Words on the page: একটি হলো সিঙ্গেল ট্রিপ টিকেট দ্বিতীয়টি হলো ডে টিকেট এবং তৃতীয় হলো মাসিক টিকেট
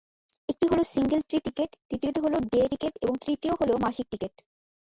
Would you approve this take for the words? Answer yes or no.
yes